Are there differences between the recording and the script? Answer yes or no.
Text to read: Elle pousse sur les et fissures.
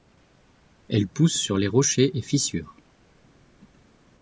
yes